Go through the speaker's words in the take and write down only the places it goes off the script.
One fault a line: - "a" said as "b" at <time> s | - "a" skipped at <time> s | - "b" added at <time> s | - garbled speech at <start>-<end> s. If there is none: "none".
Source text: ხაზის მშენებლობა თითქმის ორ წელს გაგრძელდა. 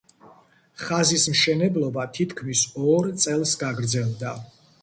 none